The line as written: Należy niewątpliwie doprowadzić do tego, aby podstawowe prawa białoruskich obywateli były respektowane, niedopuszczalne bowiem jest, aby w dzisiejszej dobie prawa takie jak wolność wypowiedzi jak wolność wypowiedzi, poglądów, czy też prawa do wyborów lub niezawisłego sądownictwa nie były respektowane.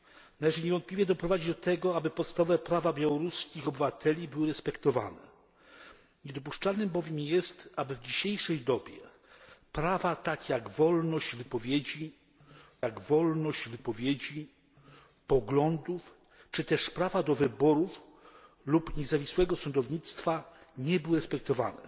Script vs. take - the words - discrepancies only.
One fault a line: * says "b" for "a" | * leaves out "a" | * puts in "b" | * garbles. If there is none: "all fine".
all fine